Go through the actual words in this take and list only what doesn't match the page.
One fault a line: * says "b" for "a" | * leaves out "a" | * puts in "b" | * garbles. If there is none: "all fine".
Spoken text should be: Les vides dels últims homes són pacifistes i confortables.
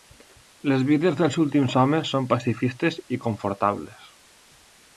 all fine